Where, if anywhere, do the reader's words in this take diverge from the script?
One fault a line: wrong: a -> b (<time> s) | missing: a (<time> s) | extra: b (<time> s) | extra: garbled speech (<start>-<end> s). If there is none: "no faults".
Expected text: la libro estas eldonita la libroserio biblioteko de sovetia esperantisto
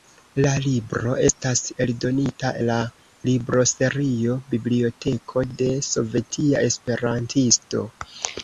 no faults